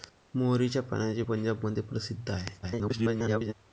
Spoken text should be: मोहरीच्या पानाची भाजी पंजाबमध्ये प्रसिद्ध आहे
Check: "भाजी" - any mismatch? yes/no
yes